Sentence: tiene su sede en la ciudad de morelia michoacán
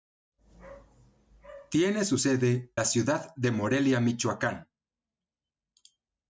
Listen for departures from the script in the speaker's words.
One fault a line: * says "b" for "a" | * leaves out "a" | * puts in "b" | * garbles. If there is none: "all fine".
* leaves out "en"